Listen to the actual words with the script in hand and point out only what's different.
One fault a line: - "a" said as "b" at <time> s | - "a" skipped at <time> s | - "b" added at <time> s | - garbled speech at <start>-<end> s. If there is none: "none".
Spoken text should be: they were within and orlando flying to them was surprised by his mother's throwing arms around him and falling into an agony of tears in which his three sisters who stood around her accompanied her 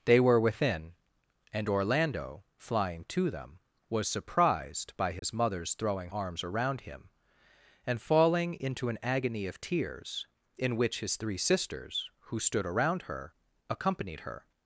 none